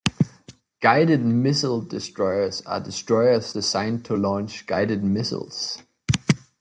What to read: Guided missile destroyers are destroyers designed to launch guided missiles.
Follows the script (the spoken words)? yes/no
yes